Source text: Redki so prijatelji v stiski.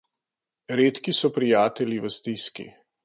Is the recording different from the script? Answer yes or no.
no